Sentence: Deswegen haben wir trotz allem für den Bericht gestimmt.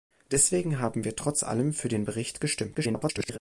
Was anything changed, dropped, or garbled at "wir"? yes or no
no